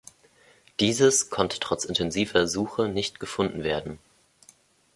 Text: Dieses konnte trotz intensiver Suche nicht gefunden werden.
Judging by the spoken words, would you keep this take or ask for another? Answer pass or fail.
pass